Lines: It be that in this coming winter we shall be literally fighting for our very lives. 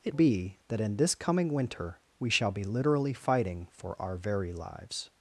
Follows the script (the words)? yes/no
yes